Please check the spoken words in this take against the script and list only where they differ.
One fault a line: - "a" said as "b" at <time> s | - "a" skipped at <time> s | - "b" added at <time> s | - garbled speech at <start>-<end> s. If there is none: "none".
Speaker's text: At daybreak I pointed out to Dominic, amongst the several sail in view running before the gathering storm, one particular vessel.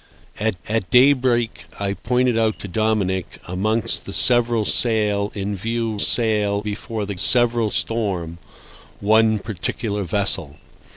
- "at" added at 0.7 s
- "running" said as "sail" at 6.0 s
- "gathering" said as "several" at 7.2 s